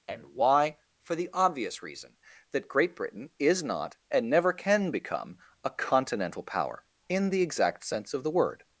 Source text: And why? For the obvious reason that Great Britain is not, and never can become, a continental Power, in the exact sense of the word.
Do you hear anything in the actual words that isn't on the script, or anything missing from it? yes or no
no